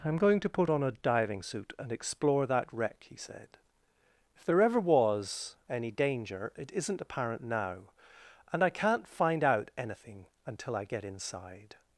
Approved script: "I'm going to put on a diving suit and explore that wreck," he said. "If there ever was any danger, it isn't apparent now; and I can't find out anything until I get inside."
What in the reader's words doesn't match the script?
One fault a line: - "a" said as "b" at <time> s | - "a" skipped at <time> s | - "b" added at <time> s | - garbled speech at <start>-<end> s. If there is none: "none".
none